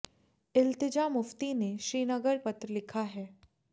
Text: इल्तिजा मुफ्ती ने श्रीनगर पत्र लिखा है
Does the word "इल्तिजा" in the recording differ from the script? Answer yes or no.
no